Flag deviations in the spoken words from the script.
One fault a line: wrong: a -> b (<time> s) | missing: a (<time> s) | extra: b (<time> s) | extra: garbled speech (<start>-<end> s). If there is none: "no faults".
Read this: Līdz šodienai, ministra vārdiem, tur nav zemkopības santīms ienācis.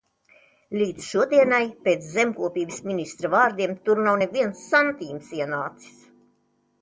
extra: pēc zemkopības (1.9 s)
wrong: zemkopības -> neviens (4.2 s)